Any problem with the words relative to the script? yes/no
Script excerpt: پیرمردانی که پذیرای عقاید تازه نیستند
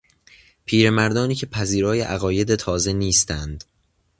no